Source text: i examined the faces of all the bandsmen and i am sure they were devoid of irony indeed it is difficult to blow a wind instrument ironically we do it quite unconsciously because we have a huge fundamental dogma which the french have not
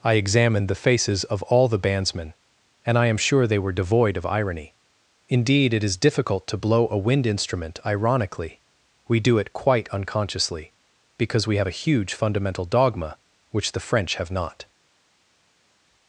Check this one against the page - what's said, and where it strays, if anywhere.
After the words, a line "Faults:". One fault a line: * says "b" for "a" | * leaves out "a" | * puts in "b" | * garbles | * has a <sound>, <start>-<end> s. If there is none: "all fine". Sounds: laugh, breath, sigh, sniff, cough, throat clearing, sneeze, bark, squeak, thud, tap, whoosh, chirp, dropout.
i examined the faces of all the bandsmen and i am sure they were devoid of irony indeed it is difficult to blow a wind instrument ironically we do it quite unconsciously because we have a huge fundamental dogma which the french have not
Faults:
all fine